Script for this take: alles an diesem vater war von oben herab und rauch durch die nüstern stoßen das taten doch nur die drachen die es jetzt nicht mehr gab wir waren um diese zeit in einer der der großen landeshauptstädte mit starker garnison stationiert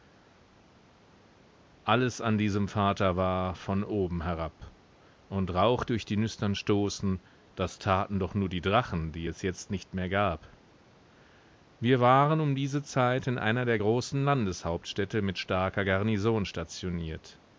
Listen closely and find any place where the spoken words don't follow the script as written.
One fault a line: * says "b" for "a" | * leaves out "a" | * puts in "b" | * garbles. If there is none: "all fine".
* leaves out "der"